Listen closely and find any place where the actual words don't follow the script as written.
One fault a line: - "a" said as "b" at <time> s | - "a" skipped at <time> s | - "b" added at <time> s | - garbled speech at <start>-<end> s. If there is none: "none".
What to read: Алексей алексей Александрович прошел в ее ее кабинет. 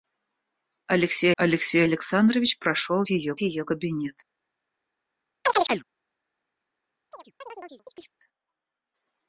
none